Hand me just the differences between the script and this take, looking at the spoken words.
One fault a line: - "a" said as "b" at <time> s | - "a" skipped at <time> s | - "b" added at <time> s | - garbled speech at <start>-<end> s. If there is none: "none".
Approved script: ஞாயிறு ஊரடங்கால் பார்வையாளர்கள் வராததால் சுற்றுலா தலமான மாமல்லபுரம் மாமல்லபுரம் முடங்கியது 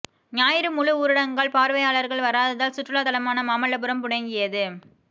- "முழு" added at 0.7 s
- "மாமல்லபுரம்" skipped at 4.0 s